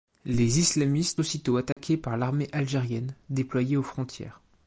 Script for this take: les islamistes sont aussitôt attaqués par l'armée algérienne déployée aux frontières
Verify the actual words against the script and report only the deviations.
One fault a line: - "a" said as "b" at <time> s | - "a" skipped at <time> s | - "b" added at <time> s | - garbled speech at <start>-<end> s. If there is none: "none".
- "sont" skipped at 1.2 s